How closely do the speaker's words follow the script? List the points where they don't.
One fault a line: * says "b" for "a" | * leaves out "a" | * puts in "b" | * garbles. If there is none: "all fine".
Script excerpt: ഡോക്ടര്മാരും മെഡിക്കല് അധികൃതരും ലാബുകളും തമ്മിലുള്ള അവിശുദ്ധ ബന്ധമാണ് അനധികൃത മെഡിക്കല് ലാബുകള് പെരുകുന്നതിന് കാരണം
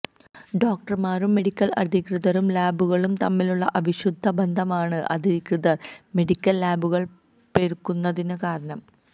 all fine